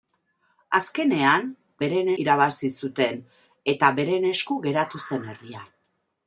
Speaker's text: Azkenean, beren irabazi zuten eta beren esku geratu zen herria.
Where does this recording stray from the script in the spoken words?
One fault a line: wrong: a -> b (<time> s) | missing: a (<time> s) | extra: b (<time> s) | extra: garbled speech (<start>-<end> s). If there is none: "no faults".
no faults